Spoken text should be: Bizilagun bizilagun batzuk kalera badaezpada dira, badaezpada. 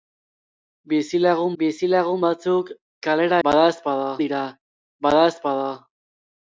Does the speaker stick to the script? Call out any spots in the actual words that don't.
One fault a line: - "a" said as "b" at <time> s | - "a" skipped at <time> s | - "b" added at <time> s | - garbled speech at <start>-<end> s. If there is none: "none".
none